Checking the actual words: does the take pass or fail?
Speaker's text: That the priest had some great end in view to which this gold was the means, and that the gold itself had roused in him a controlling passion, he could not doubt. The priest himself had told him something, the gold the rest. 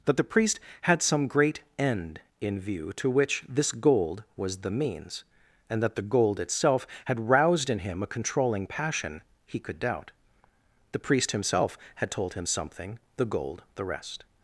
fail